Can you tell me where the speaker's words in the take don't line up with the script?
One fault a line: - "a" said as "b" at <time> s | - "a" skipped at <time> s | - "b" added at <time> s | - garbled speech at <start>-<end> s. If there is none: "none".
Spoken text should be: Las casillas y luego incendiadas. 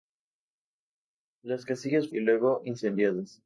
none